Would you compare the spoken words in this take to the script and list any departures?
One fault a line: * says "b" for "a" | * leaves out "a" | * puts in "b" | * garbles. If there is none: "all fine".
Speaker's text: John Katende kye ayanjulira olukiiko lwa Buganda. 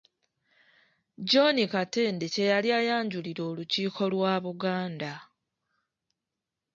* puts in "yali"